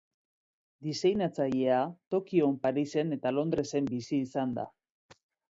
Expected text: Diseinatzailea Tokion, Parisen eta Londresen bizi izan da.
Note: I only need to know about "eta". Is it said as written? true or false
true